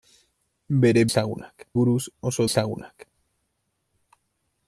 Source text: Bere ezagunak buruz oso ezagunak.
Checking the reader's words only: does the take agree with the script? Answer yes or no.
yes